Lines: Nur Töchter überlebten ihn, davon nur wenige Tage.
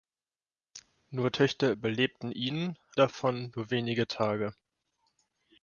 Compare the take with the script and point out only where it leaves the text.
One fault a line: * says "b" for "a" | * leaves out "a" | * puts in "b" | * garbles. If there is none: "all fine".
all fine